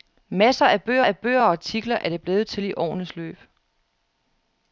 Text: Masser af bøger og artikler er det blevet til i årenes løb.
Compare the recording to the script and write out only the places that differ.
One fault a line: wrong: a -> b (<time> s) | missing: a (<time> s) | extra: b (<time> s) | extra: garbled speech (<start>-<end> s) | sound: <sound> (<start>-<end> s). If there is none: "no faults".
extra: af bøger (1.0 s)